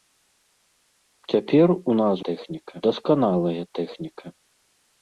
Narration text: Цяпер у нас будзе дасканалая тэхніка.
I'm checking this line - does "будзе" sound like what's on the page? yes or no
no